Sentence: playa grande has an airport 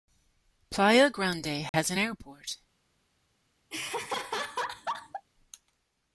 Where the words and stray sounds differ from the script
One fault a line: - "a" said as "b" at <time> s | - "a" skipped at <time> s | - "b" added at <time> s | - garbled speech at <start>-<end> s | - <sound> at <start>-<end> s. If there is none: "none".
- dropout at 1.7-1.7 s
- laugh at 3.7-5.3 s